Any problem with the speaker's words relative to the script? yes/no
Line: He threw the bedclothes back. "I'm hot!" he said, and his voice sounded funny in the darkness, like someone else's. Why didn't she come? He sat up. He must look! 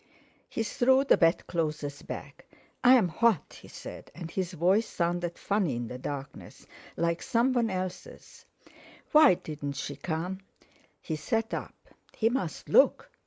no